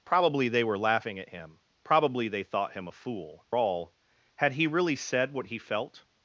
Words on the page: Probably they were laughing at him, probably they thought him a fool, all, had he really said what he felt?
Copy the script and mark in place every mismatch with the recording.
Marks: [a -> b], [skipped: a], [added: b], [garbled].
Probably they were laughing at him, probably they thought him a fool, all, had he really said what he felt?